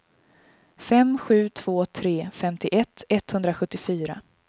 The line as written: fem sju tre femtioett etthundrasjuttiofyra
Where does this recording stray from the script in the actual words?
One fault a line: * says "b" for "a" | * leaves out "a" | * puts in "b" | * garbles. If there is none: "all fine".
* puts in "två"